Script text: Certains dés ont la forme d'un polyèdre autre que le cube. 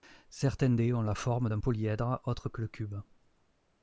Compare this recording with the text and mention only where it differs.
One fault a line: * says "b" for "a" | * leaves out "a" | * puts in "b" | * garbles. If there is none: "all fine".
all fine